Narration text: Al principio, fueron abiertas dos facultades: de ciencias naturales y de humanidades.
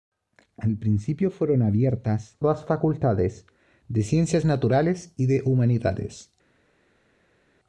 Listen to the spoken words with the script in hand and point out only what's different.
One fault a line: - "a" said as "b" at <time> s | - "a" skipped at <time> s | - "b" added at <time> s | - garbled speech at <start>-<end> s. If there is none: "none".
none